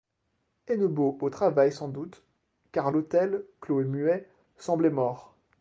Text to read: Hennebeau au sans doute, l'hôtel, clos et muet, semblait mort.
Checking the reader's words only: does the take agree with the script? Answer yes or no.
no